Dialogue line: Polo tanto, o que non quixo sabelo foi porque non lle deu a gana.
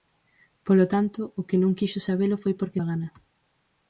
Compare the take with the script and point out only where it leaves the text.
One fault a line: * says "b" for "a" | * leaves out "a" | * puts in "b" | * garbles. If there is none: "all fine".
* leaves out "non lle deu"